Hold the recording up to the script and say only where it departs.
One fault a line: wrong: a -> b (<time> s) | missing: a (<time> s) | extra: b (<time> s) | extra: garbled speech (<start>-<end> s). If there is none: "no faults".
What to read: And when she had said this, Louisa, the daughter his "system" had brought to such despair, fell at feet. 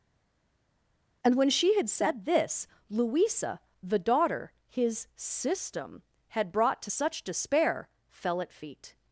no faults